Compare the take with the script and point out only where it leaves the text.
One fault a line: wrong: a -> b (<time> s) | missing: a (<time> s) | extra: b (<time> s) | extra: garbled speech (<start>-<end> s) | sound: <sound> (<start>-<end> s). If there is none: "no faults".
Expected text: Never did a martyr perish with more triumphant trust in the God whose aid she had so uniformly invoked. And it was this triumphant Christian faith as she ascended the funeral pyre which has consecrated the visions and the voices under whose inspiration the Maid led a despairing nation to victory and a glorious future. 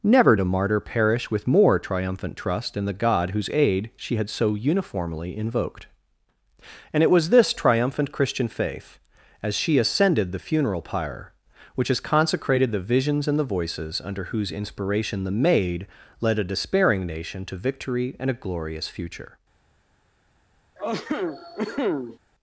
missing: did (0.3 s)
sound: cough (20.8-22.2 s)